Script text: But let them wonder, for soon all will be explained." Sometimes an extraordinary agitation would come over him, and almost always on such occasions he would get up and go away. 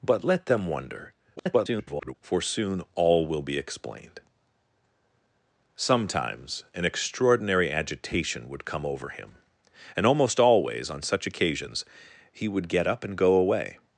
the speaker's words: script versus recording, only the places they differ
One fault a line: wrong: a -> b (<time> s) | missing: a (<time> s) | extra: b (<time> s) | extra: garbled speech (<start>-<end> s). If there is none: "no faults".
extra: garbled speech (1.4-2.1 s)